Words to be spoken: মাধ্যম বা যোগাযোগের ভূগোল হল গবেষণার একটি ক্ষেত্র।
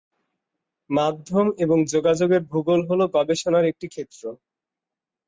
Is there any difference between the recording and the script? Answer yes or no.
yes